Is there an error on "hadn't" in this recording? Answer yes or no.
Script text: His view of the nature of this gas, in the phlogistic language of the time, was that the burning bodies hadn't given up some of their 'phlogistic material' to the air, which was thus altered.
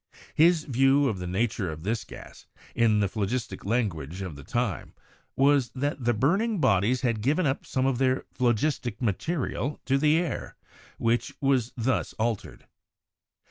yes